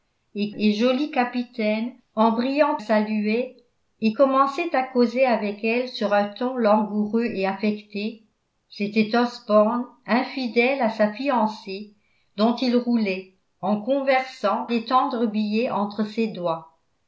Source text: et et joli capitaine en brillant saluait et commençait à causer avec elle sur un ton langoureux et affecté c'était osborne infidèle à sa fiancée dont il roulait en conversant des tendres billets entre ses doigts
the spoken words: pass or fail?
pass